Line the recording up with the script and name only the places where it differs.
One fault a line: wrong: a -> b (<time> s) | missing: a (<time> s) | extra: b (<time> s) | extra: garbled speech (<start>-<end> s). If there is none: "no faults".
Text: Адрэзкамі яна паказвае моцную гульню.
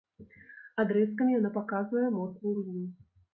no faults